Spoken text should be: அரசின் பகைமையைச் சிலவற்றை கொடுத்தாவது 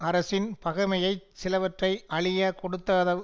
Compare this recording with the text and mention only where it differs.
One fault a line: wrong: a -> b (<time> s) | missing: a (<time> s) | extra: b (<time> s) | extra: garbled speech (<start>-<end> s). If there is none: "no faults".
extra: அழியக் (2.1 s)